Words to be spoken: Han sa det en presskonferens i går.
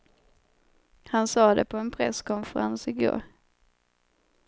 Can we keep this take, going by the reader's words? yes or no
no